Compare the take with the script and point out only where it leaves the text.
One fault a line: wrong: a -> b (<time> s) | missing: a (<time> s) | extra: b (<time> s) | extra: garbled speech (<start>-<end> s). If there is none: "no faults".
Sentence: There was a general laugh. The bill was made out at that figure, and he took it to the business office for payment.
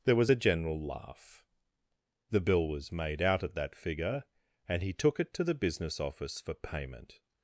no faults